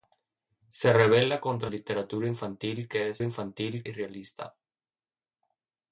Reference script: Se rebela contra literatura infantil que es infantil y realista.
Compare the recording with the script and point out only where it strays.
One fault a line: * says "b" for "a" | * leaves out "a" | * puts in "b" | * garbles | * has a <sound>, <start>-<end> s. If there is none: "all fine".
all fine